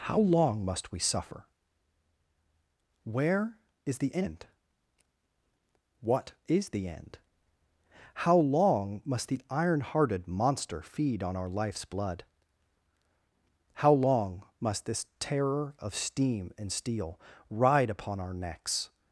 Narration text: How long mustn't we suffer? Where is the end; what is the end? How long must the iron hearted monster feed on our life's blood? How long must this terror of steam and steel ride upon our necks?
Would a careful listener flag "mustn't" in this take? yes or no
yes